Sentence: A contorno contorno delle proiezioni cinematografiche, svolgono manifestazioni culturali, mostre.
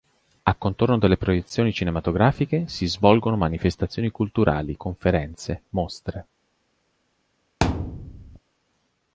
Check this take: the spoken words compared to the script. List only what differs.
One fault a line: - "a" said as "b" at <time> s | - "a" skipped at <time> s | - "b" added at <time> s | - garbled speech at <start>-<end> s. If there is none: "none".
- "contorno" skipped at 1.0 s
- "si" added at 2.7 s
- "conferenze" added at 4.8 s